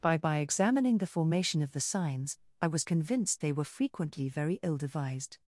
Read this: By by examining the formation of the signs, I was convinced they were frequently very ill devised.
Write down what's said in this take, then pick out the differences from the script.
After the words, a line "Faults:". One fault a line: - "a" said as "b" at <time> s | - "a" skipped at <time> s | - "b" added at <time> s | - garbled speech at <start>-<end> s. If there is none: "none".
By by examining the formation of the signs, I was convinced they were frequently very ill devised.
Faults:
none